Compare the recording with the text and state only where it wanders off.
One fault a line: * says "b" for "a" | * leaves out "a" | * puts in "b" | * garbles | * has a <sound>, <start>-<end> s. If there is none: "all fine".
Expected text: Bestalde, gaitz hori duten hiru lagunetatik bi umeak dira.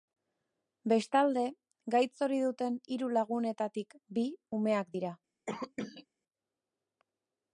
* has a cough, 5.5-6.1 s